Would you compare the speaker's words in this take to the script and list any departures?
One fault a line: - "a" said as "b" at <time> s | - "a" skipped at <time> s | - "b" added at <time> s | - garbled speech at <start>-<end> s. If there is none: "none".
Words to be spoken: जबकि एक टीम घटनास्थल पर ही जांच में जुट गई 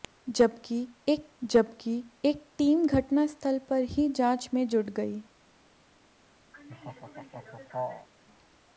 - "जबकि एक" added at 1.4 s